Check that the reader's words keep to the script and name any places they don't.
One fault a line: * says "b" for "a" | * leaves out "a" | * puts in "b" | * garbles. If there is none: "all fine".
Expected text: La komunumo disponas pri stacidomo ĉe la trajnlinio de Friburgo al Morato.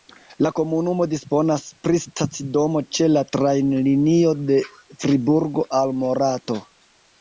all fine